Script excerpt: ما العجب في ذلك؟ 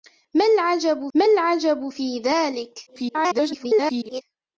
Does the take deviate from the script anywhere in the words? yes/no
yes